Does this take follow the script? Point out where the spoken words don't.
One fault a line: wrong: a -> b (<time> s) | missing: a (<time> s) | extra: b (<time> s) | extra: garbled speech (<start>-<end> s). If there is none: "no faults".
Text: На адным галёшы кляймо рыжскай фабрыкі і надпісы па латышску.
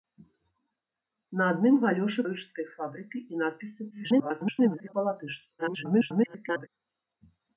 missing: кляймо (2.2 s)
extra: garbled speech (3.9-4.9 s)
extra: garbled speech (5.6-6.7 s)